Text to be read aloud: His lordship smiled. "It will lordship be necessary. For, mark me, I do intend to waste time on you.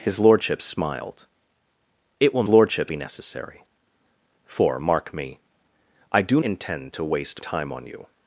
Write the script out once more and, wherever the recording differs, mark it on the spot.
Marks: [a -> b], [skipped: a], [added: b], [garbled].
His lordship smiled. "It will lordship be necessary. For, mark me, I do intend to waste time on you.